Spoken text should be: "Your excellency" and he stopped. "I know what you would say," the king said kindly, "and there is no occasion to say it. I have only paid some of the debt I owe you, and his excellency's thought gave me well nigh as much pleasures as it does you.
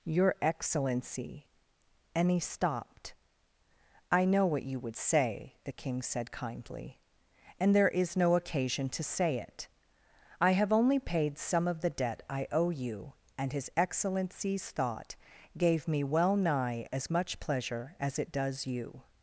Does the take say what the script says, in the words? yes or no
no